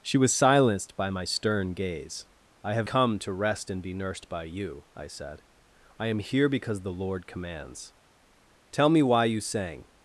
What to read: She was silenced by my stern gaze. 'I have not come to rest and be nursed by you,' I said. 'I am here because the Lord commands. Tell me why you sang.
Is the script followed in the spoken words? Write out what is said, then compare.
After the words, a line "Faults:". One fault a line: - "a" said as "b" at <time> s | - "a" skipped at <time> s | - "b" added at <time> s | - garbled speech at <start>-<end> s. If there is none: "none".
She was silenced by my stern gaze. 'I have come to rest and be nursed by you,' I said. 'I am here because the Lord commands. Tell me why you sang.
Faults:
- "not" skipped at 2.9 s